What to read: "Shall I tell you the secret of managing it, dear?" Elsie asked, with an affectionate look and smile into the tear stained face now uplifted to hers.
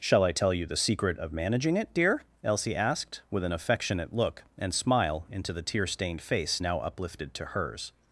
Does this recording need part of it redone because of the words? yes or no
no